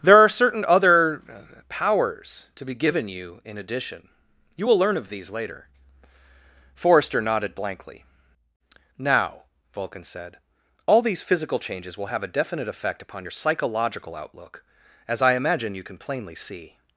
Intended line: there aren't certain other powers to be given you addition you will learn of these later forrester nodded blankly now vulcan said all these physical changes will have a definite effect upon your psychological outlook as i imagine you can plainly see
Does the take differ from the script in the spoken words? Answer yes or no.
yes